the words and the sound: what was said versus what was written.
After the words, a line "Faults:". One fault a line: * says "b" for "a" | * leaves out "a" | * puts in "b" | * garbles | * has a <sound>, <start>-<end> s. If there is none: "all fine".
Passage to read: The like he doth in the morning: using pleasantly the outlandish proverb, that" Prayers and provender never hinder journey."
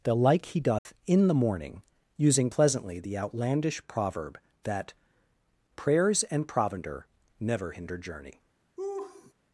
The like he doth in the morning: using pleasantly the outlandish proverb, that" Prayers and provender never hinder journey."
Faults:
* has a dropout, 0.8-0.9 s
* has a laugh, 8.8-9.3 s